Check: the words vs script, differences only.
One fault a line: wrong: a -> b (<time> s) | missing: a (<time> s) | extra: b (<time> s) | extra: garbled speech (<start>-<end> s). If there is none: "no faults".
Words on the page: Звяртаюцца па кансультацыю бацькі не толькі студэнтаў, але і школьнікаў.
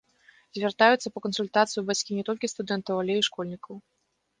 no faults